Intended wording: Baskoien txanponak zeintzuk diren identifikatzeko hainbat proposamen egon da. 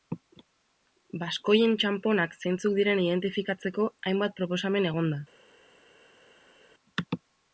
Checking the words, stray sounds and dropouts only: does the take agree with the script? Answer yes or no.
yes